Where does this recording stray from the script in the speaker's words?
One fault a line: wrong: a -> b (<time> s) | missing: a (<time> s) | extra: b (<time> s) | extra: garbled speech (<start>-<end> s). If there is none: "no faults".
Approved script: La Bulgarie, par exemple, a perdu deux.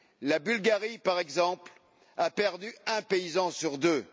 extra: un paysan sur (2.9 s)